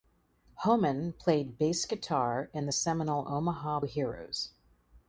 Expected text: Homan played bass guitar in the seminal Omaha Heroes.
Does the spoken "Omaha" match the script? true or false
true